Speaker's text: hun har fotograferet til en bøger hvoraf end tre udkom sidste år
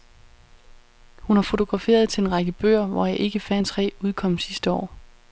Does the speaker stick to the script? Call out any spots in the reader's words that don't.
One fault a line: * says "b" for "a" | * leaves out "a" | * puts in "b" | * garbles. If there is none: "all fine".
* puts in "række"
* puts in "ikke færre"